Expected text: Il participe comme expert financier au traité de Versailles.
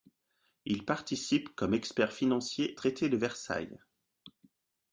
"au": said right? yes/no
no